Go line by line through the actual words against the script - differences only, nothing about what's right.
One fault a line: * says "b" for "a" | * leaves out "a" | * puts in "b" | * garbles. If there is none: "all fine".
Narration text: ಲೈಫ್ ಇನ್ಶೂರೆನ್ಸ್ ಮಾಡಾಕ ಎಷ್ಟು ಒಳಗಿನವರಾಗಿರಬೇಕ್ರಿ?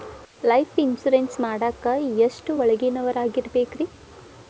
all fine